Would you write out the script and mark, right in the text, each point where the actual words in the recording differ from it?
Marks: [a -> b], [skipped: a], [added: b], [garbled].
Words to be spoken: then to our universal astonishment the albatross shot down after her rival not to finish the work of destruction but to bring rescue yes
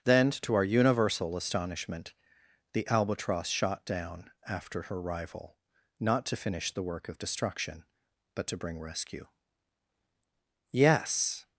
then to our universal astonishment the albatross shot down after her rival not to finish the work of destruction but to bring rescue yes